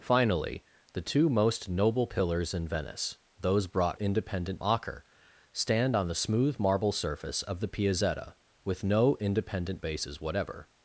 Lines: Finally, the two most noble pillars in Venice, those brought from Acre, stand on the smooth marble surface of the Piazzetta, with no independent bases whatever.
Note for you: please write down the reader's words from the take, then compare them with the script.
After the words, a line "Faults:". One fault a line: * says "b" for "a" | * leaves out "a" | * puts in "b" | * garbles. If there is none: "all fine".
Finally, the two most noble pillars in Venice, those brought independent Acre, stand on the smooth marble surface of the Piazzetta, with no independent bases whatever.
Faults:
* says "independent" for "from"